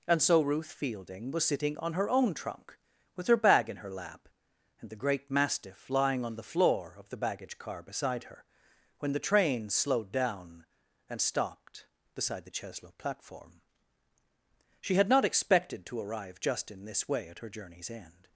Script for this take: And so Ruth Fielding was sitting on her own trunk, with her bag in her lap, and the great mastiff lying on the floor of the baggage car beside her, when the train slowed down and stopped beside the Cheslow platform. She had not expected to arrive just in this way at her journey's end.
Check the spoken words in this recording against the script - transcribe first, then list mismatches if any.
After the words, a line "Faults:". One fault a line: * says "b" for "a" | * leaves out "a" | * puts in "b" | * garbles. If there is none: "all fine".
And so Ruth Fielding was sitting on her own trunk, with her bag in her lap, and the great mastiff lying on the floor of the baggage car beside her, when the train slowed down and stopped beside the Cheslow platform. She had not expected to arrive just in this way at her journey's end.
Faults:
all fine